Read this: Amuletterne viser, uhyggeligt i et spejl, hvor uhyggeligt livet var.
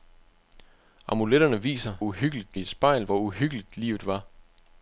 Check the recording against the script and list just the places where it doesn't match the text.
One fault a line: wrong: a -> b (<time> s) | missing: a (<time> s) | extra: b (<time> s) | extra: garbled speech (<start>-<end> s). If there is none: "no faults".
no faults